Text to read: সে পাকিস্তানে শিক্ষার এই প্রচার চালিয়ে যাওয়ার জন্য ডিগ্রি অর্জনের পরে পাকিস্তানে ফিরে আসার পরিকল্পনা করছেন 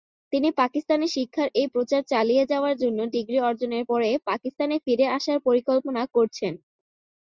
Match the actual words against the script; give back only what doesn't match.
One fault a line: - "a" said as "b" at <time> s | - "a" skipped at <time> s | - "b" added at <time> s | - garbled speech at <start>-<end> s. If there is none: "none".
- "সে" said as "তিনি" at 0.3 s